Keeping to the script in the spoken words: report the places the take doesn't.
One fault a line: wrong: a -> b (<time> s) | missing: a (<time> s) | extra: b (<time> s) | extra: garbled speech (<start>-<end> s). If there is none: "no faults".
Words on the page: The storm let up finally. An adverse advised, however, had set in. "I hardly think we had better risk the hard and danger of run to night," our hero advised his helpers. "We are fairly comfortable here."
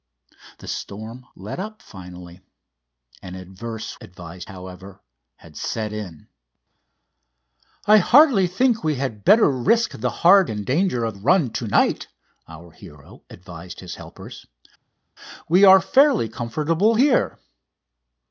no faults